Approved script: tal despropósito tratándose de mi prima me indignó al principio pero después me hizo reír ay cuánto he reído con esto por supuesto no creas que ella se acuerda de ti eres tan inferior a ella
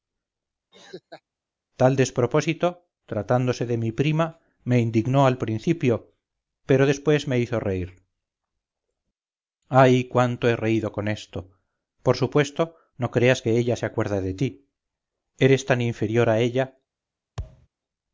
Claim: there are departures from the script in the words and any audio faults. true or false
true